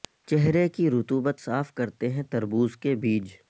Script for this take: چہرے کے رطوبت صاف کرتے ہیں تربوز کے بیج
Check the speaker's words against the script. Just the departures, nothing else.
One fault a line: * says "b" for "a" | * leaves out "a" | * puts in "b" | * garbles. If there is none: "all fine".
* says "کی" for "کے"